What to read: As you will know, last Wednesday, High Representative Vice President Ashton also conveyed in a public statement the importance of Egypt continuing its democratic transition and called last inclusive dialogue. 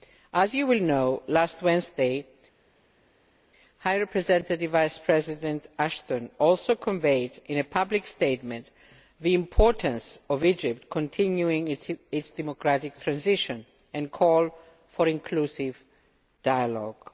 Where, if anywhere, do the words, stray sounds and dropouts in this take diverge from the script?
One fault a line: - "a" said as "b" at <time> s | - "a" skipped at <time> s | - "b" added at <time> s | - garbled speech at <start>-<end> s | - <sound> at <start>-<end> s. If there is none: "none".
- "last" said as "for" at 14.9 s